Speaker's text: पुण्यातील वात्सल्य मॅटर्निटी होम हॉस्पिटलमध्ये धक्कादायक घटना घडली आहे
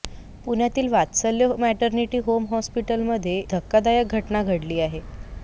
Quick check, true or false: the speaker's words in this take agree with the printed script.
true